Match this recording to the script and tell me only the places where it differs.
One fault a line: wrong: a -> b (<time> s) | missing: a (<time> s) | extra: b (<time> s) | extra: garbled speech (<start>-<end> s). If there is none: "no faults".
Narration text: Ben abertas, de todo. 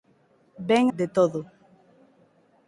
missing: abertas (0.8 s)